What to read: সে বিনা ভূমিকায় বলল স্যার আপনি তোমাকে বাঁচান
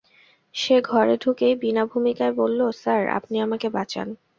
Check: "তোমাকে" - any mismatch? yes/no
yes